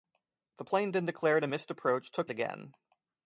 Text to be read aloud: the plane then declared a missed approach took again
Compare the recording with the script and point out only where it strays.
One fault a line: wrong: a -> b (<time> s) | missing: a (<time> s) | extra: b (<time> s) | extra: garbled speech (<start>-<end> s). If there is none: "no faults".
no faults